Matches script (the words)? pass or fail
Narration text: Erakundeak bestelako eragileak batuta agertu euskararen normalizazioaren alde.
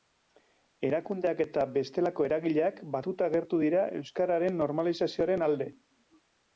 fail